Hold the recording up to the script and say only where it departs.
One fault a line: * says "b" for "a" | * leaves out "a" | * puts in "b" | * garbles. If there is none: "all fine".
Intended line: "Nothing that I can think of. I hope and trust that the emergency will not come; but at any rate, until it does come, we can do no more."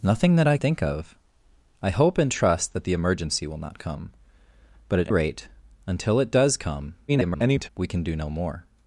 * leaves out "can"
* leaves out "any"
* garbles